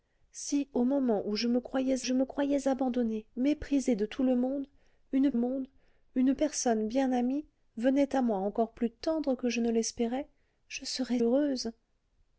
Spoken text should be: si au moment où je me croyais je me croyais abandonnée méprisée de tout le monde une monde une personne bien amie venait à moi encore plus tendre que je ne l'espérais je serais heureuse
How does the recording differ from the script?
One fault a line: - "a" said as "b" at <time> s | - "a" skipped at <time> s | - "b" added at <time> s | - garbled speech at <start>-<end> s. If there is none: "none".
none